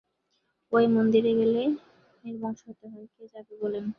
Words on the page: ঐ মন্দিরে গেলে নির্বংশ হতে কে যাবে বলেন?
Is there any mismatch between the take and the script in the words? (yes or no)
yes